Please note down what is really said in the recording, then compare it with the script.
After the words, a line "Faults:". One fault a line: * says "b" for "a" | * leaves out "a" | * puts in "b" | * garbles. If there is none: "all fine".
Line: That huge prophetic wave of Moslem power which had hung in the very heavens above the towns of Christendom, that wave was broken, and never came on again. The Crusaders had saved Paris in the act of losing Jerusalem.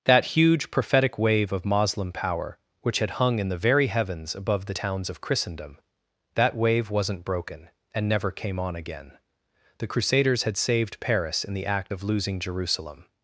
That huge prophetic wave of Moslem power which had hung in the very heavens above the towns of Christendom, that wave wasn't broken, and never came on again. The Crusaders had saved Paris in the act of losing Jerusalem.
Faults:
* says "wasn't" for "was"